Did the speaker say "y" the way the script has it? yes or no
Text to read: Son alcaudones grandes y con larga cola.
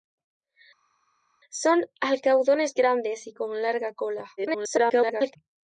yes